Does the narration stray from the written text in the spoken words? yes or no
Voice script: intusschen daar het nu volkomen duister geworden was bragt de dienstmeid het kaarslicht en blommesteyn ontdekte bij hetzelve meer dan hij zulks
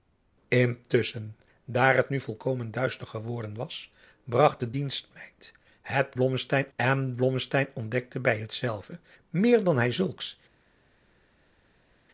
yes